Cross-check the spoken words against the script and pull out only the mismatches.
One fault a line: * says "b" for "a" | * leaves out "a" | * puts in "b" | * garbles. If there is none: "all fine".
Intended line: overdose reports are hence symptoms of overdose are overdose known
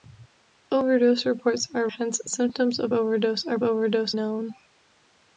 all fine